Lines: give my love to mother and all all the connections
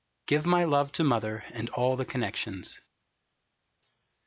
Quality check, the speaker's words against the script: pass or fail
fail